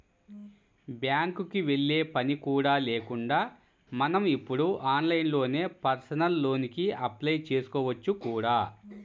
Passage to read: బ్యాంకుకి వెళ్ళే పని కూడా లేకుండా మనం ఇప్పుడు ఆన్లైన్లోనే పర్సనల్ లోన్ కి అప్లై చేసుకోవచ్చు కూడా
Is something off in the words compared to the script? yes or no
no